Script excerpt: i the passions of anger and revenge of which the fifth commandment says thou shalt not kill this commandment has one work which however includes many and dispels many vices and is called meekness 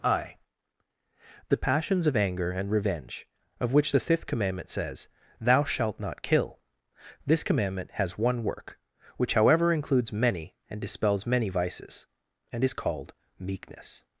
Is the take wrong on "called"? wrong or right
right